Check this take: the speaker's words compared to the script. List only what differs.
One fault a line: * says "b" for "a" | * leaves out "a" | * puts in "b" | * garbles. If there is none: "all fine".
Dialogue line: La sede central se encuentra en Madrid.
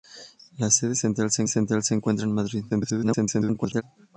* puts in "central se"
* garbles